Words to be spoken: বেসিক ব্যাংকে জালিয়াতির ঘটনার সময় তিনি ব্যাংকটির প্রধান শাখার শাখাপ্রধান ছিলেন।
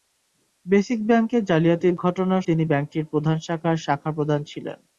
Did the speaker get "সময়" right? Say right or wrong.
wrong